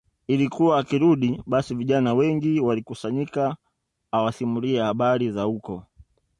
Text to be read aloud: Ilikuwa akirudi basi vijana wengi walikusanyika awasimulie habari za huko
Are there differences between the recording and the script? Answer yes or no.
no